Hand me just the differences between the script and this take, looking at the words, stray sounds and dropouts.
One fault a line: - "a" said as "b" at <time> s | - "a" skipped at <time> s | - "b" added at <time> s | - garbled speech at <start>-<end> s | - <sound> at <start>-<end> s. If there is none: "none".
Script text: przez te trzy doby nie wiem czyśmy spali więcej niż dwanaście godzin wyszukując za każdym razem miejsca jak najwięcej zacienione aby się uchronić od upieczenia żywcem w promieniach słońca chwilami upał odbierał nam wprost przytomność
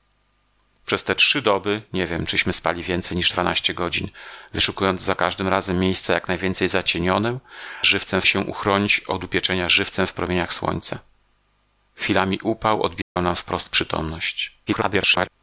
- "aby" said as "żywcem" at 7.8 s
- dropout at 13.0-13.2 s
- garbled speech at 14.7-15.3 s